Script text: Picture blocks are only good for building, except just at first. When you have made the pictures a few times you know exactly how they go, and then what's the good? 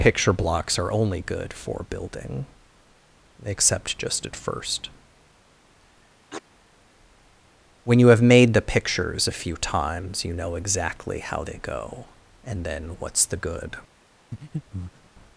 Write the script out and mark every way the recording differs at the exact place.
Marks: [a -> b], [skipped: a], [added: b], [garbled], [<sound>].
Picture blocks are only good for building, except just at first. [sneeze] When you have made the pictures a few times you know exactly how they go, and then what's the good? [breath]